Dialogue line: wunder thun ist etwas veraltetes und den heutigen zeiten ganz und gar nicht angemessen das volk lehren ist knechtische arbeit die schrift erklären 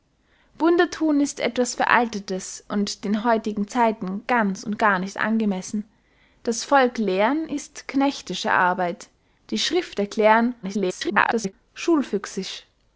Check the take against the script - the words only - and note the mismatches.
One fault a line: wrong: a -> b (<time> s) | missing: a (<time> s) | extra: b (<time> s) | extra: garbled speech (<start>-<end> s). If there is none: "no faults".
extra: garbled speech (10.6-11.5 s)